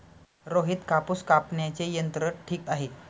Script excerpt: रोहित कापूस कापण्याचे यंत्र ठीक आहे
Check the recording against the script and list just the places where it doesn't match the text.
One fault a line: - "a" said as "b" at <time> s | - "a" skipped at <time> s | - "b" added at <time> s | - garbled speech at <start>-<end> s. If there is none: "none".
none